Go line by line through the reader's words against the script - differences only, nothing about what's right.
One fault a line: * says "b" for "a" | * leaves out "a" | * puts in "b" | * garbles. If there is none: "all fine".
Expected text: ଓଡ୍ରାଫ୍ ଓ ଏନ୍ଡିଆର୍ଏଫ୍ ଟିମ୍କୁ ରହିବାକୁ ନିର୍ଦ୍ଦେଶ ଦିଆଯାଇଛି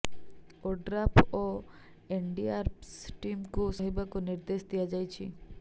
all fine